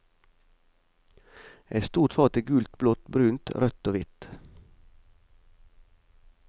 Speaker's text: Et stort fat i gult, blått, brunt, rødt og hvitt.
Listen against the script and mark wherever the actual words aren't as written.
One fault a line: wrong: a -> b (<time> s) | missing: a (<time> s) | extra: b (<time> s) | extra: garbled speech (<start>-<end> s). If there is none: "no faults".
no faults